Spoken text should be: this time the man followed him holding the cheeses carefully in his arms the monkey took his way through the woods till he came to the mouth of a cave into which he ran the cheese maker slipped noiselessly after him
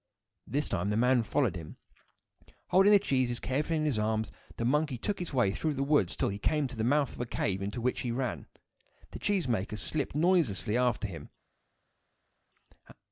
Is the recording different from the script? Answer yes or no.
no